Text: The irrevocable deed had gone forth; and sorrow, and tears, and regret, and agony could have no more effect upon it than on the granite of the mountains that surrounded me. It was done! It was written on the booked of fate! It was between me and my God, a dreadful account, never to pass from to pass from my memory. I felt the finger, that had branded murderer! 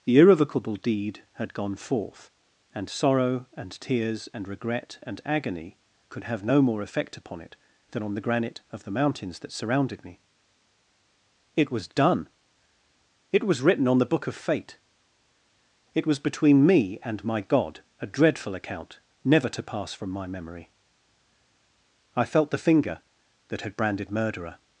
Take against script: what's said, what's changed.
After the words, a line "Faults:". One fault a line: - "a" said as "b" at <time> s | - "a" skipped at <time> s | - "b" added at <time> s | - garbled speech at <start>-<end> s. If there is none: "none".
The irrevocable deed had gone forth; and sorrow, and tears, and regret, and agony could have no more effect upon it than on the granite of the mountains that surrounded me. It was done! It was written on the book of fate! It was between me and my God, a dreadful account, never to pass from my memory. I felt the finger, that had branded murderer!
Faults:
- "booked" said as "book" at 14.1 s
- "to pass from" skipped at 20.1 s